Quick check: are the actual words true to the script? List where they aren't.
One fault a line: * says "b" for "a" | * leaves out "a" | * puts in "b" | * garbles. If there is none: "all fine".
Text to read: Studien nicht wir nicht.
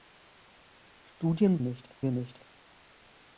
all fine